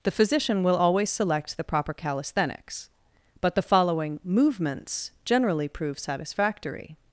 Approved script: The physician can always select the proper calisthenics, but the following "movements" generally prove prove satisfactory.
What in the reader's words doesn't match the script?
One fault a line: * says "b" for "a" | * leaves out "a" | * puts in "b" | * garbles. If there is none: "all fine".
* says "will" for "can"
* leaves out "prove"